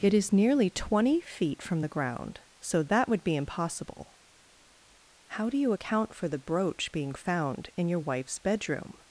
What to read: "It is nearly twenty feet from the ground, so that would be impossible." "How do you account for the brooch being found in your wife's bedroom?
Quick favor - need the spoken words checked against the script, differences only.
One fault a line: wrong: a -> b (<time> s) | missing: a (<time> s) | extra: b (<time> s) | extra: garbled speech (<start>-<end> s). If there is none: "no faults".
no faults